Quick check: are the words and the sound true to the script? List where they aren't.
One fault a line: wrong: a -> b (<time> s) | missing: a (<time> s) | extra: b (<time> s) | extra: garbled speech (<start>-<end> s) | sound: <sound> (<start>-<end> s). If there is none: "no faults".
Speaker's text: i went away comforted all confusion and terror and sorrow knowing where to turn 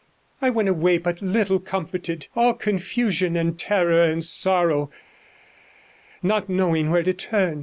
extra: but little (1.0 s)
extra: not (6.2 s)